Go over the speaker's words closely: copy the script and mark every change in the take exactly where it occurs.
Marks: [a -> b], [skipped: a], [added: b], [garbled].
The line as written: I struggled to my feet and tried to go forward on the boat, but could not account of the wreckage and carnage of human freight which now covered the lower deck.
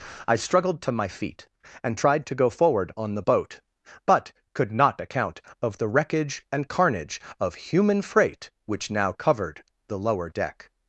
I struggled to my feet and tried to go forward on the boat, but could not account of the wreckage and carnage of human freight which now covered the lower deck.